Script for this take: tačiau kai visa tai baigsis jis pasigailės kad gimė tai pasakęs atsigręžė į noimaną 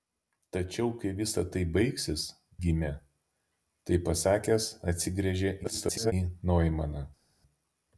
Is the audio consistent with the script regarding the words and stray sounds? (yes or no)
no